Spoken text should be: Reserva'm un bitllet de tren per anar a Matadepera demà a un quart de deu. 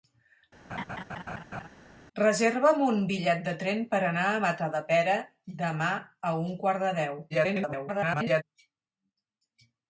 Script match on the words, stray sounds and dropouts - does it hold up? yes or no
no